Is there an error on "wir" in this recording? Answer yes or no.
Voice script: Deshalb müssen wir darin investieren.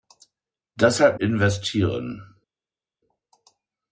yes